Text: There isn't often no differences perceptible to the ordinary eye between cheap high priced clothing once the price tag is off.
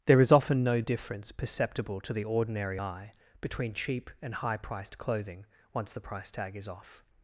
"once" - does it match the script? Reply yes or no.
yes